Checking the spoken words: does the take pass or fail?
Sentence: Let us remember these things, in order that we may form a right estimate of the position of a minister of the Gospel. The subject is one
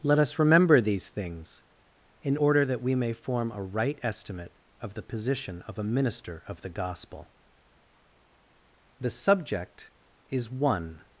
pass